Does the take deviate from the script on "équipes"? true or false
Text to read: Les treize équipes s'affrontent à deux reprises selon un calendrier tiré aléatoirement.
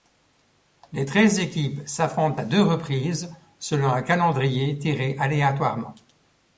false